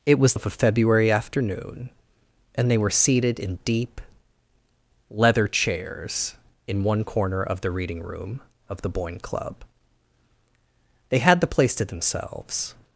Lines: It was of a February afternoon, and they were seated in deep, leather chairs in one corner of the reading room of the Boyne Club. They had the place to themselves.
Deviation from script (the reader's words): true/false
false